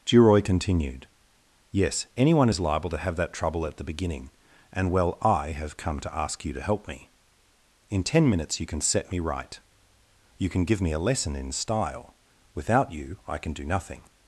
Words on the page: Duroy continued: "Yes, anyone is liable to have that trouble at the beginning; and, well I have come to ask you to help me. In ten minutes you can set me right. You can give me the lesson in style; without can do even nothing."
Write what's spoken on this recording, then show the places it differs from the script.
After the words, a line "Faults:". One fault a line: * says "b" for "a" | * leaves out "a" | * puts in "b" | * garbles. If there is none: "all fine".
Duroy continued: "Yes, anyone is liable to have that trouble at the beginning; and, well I have come to ask you to help me. In ten minutes you can set me right. You can give me a lesson in style; without you I can do nothing."
Faults:
* says "a" for "the"
* puts in "you I"
* leaves out "even"